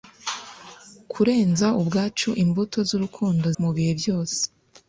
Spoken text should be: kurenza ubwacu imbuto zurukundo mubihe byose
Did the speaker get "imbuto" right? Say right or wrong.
right